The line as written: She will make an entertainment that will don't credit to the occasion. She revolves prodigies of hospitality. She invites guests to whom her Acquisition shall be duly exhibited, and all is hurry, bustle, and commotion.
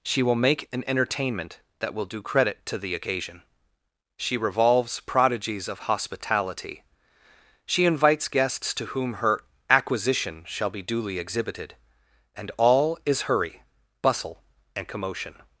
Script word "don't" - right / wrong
wrong